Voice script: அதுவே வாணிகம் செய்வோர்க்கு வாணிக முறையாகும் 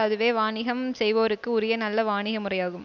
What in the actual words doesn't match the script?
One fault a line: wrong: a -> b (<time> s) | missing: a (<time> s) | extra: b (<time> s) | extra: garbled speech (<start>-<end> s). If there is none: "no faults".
extra: உரிய நல்ல (1.5 s)